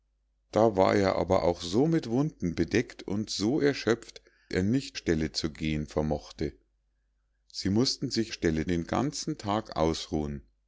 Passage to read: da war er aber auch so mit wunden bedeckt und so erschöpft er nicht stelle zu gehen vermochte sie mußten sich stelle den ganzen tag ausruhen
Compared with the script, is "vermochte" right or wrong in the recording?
right